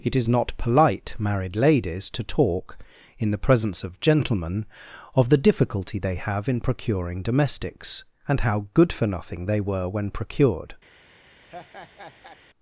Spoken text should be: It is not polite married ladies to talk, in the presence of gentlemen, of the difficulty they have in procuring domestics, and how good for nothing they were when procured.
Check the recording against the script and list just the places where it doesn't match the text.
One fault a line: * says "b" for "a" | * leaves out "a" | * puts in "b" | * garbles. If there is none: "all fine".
all fine